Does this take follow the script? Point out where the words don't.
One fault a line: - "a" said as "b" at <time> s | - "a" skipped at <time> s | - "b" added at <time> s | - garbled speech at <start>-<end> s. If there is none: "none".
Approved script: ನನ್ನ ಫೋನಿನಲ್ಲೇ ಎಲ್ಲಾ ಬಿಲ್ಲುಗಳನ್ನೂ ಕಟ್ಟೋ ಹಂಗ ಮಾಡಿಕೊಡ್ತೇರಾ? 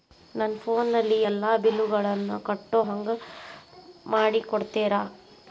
none